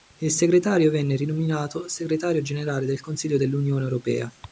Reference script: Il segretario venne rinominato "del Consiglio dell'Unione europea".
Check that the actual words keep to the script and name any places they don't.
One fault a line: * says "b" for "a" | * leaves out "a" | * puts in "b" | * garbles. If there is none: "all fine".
* puts in "segretario generale"